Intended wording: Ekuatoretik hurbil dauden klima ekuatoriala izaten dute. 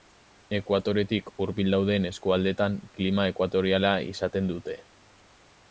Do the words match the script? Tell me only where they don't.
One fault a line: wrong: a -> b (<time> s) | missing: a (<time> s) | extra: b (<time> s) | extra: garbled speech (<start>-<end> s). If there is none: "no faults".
extra: eskualdeetan (2.1 s)